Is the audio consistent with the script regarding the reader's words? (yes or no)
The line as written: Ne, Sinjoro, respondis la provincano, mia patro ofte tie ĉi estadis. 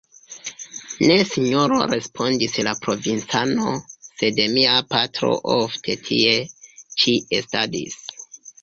no